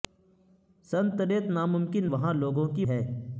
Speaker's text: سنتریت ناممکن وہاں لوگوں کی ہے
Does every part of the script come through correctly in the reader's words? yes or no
yes